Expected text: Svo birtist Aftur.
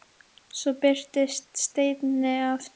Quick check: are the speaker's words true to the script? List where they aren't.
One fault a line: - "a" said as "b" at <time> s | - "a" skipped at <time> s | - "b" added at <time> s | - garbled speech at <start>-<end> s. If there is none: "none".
- "Steini" added at 1.6 s